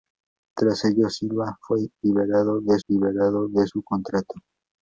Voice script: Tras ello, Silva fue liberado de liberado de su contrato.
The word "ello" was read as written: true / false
true